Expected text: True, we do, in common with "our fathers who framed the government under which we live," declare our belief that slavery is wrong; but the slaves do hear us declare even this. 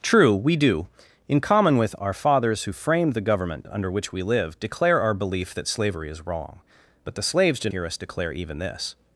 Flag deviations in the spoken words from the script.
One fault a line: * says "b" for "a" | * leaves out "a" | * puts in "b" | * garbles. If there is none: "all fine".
all fine